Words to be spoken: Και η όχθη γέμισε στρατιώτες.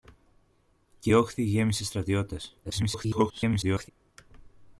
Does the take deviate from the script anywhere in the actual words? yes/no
yes